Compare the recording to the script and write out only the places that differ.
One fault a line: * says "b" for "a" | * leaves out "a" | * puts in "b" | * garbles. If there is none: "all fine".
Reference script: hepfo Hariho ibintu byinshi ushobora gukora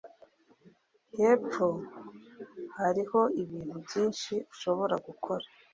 all fine